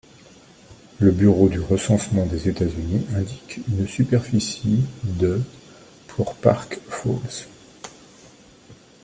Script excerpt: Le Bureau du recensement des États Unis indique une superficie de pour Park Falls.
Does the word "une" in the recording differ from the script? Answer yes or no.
no